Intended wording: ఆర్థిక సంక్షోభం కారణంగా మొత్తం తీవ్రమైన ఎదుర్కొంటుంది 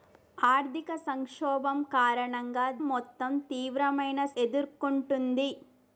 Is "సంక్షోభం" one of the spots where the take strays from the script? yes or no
no